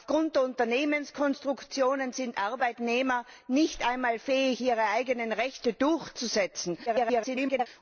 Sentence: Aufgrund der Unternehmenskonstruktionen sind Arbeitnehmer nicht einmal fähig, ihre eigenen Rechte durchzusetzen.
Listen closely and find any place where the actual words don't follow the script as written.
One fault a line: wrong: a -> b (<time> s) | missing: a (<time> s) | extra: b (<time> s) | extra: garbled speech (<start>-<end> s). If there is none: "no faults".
extra: garbled speech (6.9-7.7 s)